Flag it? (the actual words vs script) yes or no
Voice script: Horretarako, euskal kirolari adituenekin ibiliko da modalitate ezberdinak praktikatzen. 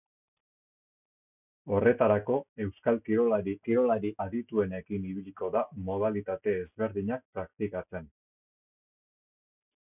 yes